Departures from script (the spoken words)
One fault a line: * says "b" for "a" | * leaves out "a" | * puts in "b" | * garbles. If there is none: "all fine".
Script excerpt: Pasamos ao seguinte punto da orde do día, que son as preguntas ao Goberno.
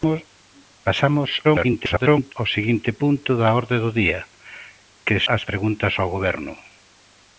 * garbles
* leaves out "son"